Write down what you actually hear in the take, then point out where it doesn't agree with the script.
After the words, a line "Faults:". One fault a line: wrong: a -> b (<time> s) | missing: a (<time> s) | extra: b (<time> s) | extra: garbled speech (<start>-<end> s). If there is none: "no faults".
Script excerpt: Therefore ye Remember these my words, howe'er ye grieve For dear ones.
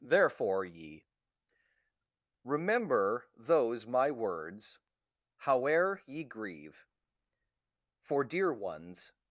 Therefore ye Remember those my words, howe'er ye grieve For dear ones.
Faults:
wrong: these -> those (3.4 s)